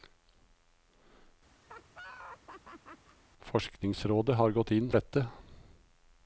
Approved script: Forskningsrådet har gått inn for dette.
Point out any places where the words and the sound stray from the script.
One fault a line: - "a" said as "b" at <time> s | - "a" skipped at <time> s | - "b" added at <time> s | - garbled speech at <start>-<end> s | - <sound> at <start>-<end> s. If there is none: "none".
- laugh at 1.6-3.2 s
- "for" skipped at 4.9 s